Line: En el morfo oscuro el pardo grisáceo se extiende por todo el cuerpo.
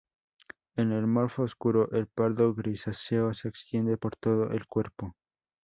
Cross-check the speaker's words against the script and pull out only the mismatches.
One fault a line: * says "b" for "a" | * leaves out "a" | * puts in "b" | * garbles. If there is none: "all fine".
all fine